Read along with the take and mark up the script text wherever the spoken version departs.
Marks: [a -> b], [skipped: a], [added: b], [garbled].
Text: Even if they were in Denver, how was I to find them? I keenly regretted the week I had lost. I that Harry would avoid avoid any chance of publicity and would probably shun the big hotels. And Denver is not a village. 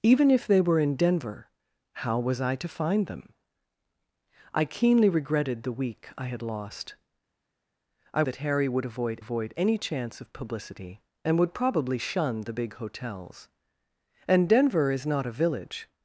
Even if they were in Denver, how was I to find them? I keenly regretted the week I had lost. I that Harry would avoid avoid any chance of publicity and would probably shun the big hotels. And Denver is not a village.